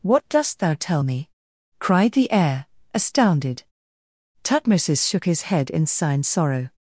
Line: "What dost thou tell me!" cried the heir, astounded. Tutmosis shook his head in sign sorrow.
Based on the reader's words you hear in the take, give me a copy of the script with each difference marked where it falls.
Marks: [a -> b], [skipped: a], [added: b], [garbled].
"What dost thou tell me!" cried the heir, astounded. Tutmosis shook his head in sign sorrow.